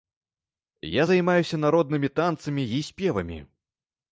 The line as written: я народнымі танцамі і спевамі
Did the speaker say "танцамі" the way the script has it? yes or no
yes